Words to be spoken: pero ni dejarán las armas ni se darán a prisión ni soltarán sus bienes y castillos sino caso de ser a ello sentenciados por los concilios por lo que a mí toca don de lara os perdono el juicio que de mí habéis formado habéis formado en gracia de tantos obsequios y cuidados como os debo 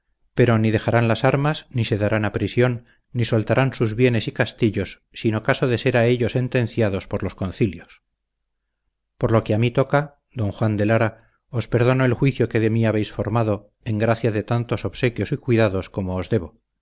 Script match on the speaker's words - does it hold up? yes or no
no